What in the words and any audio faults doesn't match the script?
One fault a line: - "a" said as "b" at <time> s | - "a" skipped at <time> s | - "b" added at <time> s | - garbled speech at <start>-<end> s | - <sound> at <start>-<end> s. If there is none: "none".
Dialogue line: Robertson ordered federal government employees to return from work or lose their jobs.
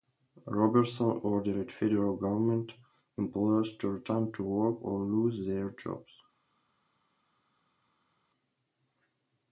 - "from" said as "to" at 4.3 s